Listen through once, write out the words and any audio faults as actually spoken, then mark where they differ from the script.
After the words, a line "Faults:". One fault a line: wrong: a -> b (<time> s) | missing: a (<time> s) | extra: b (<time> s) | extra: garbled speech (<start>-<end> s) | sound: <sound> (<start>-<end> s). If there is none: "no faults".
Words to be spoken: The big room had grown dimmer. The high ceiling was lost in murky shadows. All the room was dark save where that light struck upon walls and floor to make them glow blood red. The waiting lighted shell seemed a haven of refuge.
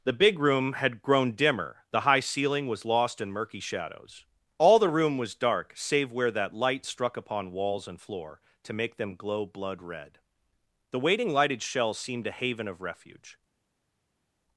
The big room had grown dimmer. The high ceiling was lost in murky shadows. All the room was dark save where that light struck upon walls and floor to make them glow blood red. The waiting lighted shell seemed a haven of refuge.
Faults:
no faults